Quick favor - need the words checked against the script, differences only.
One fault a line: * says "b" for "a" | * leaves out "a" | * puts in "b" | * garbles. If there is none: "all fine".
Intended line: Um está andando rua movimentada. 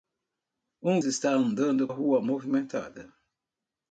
all fine